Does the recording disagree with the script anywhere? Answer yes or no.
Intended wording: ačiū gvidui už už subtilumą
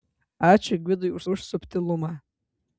no